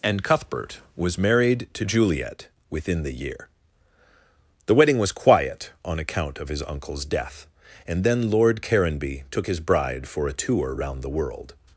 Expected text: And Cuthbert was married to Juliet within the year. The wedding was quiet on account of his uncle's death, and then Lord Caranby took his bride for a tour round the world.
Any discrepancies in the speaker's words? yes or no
no